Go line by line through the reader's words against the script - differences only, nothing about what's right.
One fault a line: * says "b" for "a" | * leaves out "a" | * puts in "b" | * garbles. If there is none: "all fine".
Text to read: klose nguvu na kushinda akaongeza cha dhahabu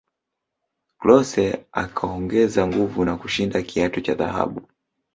* puts in "akaongeza"
* says "kiatu" for "akaongeza"